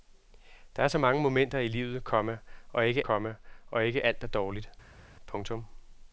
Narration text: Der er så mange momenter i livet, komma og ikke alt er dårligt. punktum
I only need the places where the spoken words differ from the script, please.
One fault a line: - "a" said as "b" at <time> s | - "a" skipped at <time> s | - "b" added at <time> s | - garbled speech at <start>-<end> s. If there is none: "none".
- "komma og ikke" added at 3.0 s